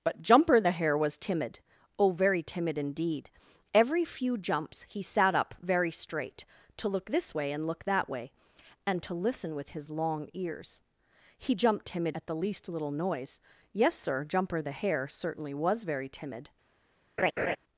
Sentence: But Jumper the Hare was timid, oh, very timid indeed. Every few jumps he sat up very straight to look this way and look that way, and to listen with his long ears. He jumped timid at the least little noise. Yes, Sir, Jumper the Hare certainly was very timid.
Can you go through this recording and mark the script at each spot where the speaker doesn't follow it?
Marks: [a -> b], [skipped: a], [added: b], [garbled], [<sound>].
But Jumper the Hare was timid, oh, very timid indeed. Every few jumps he sat up very straight to look this way and look that way, and to listen with his long ears. He jumped timid at the least little noise. Yes, Sir, Jumper the Hare certainly was very timid. [laugh]